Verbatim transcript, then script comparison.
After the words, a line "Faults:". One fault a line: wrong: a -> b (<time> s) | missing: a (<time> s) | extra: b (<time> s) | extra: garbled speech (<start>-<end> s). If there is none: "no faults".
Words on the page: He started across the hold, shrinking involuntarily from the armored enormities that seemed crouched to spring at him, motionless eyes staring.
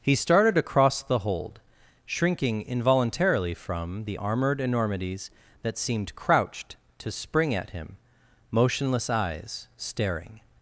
He started across the hold, shrinking involuntarily from the armored enormities that seemed crouched to spring at him, motionless eyes staring.
Faults:
no faults